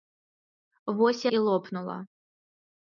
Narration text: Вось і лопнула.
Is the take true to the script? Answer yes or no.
yes